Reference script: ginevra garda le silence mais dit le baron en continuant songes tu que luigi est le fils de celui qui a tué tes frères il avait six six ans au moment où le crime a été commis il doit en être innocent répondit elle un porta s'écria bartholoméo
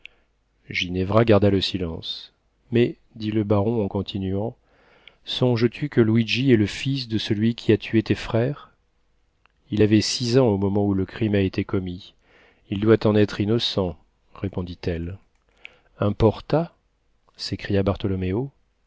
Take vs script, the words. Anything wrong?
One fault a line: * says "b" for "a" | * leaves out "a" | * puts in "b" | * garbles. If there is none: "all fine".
* leaves out "six"